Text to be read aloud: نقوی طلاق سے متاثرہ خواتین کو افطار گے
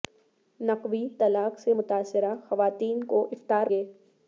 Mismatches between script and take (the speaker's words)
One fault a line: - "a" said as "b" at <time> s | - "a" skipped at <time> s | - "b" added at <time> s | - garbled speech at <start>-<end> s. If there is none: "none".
none